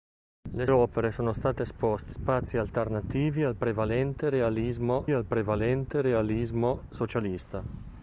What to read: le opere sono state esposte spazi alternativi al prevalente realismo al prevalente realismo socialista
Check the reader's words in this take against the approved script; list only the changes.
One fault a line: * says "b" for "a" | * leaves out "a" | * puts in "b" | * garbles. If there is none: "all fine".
all fine